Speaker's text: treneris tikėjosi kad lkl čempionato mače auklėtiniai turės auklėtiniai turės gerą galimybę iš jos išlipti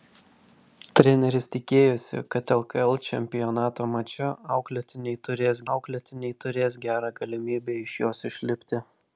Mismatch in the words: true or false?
false